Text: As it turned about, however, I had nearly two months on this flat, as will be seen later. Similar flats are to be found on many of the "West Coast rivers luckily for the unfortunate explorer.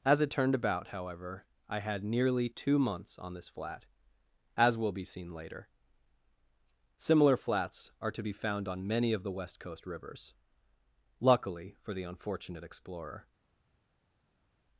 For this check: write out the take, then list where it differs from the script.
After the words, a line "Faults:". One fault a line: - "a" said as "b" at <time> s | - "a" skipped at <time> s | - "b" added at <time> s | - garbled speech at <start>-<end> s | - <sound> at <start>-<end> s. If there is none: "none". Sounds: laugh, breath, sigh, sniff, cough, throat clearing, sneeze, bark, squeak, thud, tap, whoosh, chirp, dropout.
As it turned about, however, I had nearly two months on this flat, as will be seen later. Similar flats are to be found on many of the "West Coast rivers luckily for the unfortunate explorer.
Faults:
none